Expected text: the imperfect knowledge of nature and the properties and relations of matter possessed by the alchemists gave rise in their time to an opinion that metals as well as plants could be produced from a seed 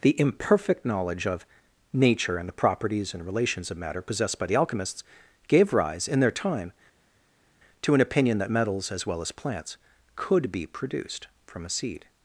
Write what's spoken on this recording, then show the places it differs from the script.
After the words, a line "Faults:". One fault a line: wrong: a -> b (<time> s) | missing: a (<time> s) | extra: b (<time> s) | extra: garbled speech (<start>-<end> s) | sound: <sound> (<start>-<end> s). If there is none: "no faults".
the imperfect knowledge of nature and the properties and relations of matter possessed by the alchemists gave rise in their time to an opinion that metals as well as plants could be produced from a seed
Faults:
no faults